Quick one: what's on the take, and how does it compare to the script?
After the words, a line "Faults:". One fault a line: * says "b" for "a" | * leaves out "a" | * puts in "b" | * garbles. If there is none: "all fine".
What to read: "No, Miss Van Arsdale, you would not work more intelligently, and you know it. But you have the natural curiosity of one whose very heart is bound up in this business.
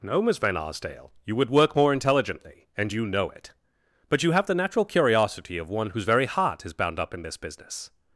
"No, Miss Van Arsdale, you would work more intelligently, and you know it. But you have the natural curiosity of one whose very heart is bound up in this business.
Faults:
* leaves out "not"